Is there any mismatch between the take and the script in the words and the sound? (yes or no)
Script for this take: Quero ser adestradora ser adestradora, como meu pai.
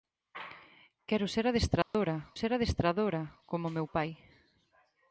yes